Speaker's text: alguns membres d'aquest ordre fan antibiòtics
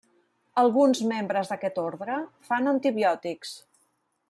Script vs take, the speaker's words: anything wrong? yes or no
no